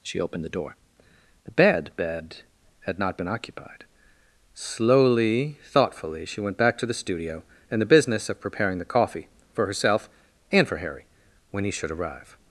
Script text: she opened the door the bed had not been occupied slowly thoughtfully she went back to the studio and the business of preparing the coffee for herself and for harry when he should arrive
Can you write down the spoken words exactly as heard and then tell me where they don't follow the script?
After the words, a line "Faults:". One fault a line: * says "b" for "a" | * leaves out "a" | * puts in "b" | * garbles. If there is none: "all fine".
she opened the door the bed bed had not been occupied slowly thoughtfully she went back to the studio and the business of preparing the coffee for herself and for harry when he should arrive
Faults:
* puts in "bed"